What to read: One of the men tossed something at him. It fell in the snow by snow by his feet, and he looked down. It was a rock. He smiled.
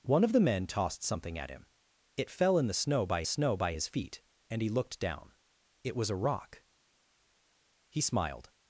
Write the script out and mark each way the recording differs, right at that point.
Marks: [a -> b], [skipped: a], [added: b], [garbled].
One of the men tossed something at him. It fell in the snow by snow by his feet, and he looked down. It was a rock. He smiled.